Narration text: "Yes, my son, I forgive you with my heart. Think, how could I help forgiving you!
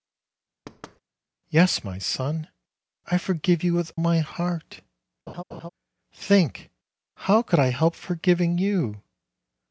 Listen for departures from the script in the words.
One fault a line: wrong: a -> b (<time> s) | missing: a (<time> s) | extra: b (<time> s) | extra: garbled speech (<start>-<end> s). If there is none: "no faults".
no faults